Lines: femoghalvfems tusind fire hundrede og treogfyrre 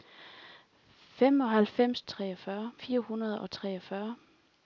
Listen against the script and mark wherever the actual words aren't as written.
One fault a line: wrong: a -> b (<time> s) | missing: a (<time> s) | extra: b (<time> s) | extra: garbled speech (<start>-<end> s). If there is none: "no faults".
wrong: tusind -> treogfyrre (2.1 s)